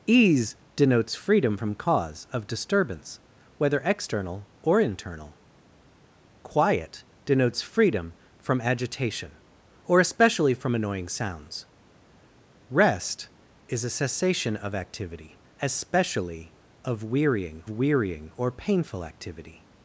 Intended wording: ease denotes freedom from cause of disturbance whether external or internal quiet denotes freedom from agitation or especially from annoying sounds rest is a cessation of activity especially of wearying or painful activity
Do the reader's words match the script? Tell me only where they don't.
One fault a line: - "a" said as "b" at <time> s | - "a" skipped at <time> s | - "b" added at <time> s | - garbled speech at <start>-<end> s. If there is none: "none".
- "wearying" added at 17.7 s